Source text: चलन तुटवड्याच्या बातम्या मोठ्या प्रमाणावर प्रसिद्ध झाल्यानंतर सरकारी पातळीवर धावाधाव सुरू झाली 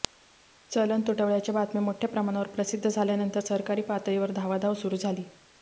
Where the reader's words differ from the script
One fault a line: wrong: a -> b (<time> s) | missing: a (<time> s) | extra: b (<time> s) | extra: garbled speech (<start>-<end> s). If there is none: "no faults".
no faults